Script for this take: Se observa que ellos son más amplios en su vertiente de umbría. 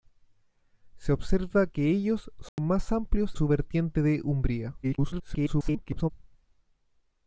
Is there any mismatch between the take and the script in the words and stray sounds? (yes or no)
yes